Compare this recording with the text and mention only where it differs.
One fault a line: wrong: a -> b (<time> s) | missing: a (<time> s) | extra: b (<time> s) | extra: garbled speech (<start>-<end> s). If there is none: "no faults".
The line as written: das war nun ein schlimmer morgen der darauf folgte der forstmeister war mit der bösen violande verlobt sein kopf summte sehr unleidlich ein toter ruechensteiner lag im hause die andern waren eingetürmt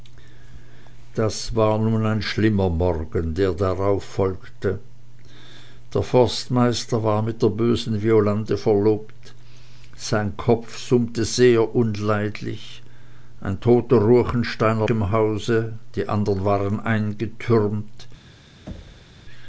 missing: lag (14.9 s)